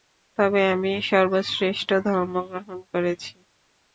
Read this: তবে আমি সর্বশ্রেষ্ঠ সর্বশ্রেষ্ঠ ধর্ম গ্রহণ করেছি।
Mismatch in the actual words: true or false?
true